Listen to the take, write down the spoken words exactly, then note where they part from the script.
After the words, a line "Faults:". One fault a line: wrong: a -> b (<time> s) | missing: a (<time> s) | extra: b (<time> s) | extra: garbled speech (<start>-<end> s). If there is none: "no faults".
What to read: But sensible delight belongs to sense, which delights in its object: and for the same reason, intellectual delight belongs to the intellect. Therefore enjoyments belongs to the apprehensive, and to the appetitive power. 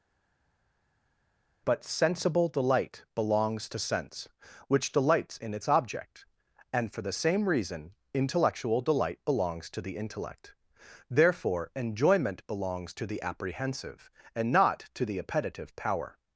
But sensible delight belongs to sense, which delights in its object: and for the same reason, intellectual delight belongs to the intellect. Therefore enjoyment belongs to the apprehensive, and not to the appetitive power.
Faults:
wrong: enjoyments -> enjoyment (11.8 s)
extra: not (14.5 s)